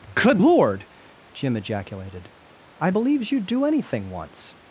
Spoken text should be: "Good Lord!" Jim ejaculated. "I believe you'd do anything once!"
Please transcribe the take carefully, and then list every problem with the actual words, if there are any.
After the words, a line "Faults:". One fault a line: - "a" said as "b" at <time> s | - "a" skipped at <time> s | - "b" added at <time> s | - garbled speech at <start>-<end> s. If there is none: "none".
"Good Lord!" Jim ejaculated. "I believes you'd do anything once!"
Faults:
- "believe" said as "believes" at 2.9 s